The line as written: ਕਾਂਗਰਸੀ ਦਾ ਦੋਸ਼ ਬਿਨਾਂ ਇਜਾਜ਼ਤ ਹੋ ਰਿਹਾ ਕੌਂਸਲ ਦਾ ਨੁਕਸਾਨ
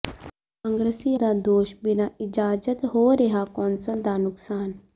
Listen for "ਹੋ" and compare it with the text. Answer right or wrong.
right